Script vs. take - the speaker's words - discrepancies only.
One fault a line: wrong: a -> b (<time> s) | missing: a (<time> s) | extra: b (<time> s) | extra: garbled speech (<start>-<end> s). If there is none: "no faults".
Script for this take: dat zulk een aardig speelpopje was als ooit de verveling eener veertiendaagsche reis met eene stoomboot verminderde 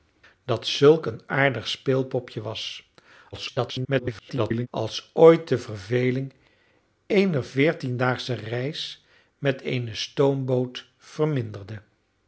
extra: garbled speech (3.3-4.7 s)